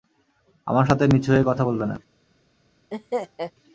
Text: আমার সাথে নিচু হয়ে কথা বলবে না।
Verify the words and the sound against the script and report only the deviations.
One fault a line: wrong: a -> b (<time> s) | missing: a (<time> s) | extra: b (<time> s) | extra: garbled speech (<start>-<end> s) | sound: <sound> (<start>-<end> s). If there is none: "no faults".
sound: laugh (2.9-3.5 s)